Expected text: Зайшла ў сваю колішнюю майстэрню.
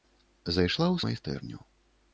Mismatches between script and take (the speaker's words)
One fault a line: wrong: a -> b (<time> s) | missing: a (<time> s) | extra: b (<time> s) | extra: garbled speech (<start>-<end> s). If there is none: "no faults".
missing: сваю колішнюю (1.0 s)